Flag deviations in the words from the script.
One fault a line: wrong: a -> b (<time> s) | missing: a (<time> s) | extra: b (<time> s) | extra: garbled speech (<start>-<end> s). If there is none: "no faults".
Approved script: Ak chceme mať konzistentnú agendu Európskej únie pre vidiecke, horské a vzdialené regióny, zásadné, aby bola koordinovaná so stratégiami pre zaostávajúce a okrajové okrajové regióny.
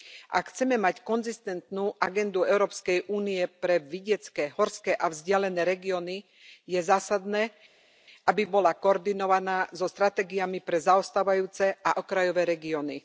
extra: je (6.7 s)
missing: okrajové (12.4 s)